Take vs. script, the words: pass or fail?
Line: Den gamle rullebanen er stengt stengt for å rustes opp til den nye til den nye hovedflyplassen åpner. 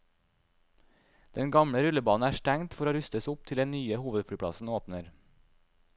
fail